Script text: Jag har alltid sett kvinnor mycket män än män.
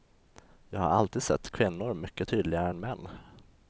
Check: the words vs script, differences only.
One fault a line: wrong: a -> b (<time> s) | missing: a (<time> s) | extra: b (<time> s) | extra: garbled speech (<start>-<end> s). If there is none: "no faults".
wrong: män -> tydligare (2.3 s)